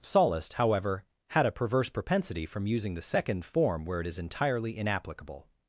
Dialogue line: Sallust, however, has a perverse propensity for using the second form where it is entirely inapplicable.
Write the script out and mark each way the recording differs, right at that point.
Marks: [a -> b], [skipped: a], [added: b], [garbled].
Sallust, however, [has -> had] a perverse propensity [for -> from] using the second form where it is entirely inapplicable.